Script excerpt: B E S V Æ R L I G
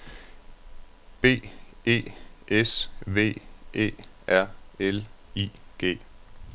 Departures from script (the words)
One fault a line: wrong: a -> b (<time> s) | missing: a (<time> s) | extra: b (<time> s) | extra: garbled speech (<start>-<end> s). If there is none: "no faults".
no faults